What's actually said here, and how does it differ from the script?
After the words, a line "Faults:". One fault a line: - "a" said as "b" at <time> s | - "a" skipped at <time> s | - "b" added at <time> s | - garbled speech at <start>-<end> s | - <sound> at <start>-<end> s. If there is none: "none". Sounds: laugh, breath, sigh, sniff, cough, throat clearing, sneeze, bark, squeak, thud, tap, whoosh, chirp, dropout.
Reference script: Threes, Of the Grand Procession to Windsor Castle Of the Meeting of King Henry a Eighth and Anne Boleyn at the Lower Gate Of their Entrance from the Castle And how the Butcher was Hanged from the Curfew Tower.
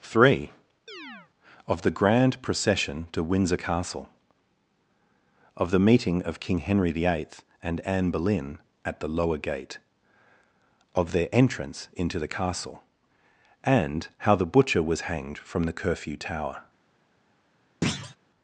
Three, Of the Grand Procession to Windsor Castle Of the Meeting of King Henry the Eighth and Anne Boleyn at the Lower Gate Of their Entrance into the Castle And how the Butcher was Hanged from the Curfew Tower.
Faults:
- "Threes" said as "Three" at 0.0 s
- chirp at 0.9-1.3 s
- "a" said as "the" at 6.9 s
- "from" said as "into" at 11.9 s
- thud at 17.8-18.2 s